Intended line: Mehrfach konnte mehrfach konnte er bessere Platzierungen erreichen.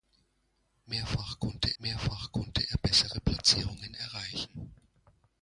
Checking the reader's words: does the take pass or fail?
pass